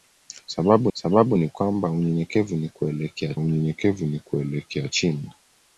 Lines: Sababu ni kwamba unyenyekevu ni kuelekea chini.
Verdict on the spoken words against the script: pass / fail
fail